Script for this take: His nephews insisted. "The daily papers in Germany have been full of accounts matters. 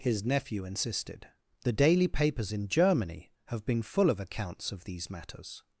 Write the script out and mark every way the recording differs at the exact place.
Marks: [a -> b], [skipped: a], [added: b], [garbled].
His [nephews -> nephew] insisted. "The daily papers in Germany have been full of accounts [added: of these] matters.